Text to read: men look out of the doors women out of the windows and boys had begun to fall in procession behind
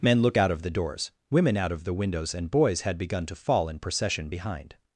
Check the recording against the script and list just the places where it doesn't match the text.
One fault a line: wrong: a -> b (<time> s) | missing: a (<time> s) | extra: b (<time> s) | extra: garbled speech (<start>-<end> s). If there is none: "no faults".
no faults